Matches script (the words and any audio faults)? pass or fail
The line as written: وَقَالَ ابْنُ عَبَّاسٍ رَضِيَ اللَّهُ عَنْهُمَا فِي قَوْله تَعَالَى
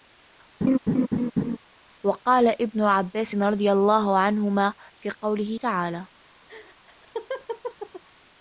fail